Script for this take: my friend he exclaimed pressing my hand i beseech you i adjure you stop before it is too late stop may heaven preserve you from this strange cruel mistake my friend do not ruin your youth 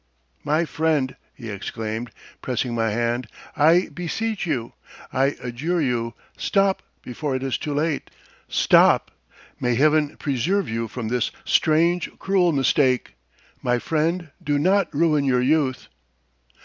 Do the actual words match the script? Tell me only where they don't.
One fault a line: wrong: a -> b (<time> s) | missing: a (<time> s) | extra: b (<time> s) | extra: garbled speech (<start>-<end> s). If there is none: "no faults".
no faults